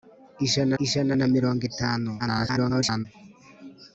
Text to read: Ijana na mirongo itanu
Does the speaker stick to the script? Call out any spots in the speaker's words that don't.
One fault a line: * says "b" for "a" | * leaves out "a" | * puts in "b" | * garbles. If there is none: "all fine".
* puts in "ijana"
* garbles